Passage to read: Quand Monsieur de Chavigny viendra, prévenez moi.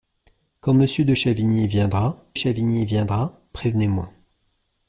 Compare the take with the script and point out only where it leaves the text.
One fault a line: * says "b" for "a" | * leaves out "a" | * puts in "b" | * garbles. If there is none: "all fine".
* puts in "Chavigny viendra"